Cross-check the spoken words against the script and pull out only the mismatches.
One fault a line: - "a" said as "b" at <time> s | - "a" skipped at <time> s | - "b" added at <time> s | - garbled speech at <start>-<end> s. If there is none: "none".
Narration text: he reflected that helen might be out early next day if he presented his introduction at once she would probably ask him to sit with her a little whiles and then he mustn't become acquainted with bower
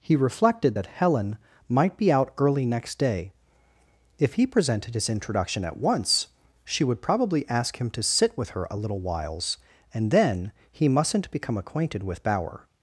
none